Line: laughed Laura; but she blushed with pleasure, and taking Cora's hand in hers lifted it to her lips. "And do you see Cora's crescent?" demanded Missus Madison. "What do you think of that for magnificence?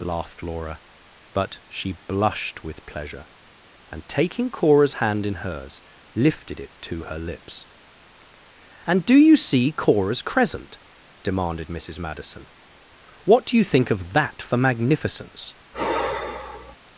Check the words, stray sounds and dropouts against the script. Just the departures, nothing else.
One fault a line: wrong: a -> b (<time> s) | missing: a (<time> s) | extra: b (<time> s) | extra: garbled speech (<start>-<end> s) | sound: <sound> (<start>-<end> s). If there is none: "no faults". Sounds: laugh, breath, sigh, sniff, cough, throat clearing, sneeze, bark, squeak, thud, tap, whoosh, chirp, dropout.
sound: sigh (15.7-16.8 s)